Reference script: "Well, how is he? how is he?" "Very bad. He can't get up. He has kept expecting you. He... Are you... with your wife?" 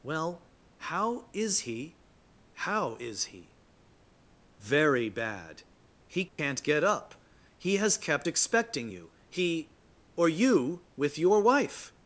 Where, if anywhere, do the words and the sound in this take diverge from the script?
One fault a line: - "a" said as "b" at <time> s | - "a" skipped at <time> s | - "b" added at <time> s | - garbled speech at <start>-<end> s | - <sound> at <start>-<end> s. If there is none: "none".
- dropout at 6.3-6.4 s
- "Are" said as "Or" at 10.1 s